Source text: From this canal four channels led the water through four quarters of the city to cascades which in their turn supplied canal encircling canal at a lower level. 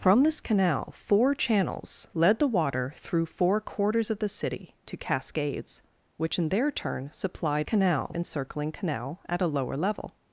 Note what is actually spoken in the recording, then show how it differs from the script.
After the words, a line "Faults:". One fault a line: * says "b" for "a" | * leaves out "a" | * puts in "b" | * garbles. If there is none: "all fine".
From this canal four channels led the water through four quarters of the city to cascades which in their turn supplied canal encircling canal at a lower level.
Faults:
all fine